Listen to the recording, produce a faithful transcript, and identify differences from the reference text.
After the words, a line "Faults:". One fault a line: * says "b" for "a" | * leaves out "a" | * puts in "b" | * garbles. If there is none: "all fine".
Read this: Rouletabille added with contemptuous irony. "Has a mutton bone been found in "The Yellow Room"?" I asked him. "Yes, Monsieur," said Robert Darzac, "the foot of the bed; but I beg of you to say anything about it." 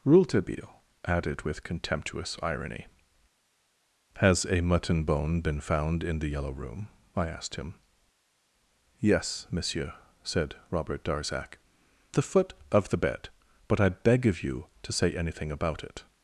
Rouletabille added with contemptuous irony. "Has a mutton bone been found in "The Yellow Room"?" I asked him. "Yes, Monsieur," said Robert Darzac, "the foot of the bed; but I beg of you to say anything about it."
Faults:
all fine